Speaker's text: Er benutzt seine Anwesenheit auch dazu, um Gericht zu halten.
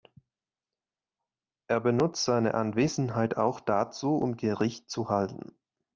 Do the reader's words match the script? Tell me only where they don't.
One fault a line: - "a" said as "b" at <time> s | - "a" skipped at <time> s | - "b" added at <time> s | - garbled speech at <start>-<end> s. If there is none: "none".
none